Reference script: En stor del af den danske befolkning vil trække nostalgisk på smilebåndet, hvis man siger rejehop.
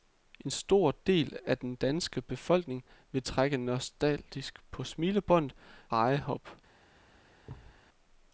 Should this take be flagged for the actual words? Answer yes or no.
yes